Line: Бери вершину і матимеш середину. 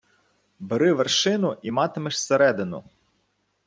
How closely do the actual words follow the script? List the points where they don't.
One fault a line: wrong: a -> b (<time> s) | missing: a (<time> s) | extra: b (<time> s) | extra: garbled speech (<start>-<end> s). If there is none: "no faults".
no faults